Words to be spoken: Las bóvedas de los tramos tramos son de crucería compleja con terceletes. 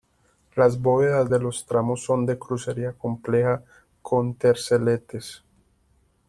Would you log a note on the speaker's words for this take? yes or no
yes